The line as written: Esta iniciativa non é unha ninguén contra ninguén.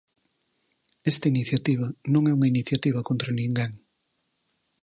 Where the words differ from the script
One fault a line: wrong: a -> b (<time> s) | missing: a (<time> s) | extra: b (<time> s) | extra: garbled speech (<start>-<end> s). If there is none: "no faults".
wrong: ninguén -> iniciativa (2.5 s)